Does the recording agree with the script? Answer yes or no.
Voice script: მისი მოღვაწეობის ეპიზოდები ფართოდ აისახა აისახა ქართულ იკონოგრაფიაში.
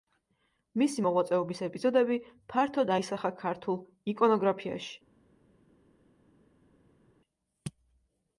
no